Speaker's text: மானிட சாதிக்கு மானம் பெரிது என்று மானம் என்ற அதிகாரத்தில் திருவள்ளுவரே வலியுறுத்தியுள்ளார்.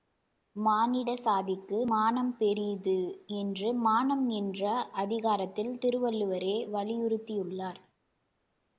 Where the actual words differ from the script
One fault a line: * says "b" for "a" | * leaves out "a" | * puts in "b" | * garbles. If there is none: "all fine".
all fine